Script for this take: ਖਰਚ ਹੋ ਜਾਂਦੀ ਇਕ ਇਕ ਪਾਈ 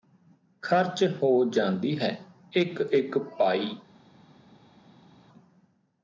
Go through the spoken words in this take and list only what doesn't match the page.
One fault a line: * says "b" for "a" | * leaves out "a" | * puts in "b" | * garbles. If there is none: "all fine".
* puts in "ਹੈ"